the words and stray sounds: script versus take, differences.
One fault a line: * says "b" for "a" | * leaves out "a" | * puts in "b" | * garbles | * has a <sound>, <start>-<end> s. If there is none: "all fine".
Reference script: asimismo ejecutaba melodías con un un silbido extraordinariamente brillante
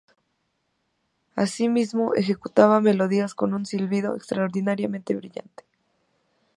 * leaves out "un"